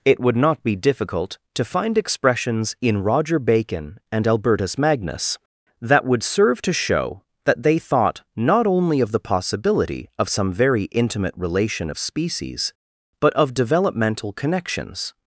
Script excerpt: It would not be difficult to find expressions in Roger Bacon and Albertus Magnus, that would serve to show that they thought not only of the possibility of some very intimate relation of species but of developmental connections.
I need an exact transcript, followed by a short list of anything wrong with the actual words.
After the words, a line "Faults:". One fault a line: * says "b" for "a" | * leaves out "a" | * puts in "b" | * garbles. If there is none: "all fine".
It would not be difficult to find expressions in Roger Bacon and Albertus Magnus, that would serve to show that they thought not only of the possibility of some very intimate relation of species but of developmental connections.
Faults:
all fine